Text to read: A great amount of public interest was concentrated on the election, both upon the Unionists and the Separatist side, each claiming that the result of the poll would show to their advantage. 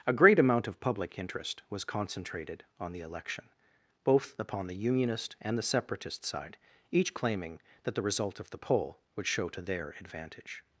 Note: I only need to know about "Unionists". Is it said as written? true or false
false